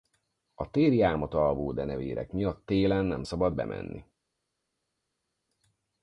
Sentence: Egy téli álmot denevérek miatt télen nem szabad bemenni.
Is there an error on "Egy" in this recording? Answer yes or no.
yes